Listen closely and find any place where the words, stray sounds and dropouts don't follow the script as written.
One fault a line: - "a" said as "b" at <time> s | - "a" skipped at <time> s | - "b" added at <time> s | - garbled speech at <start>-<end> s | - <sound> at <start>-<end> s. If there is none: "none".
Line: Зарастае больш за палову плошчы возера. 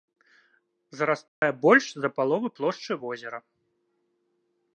- dropout at 1.3-1.4 s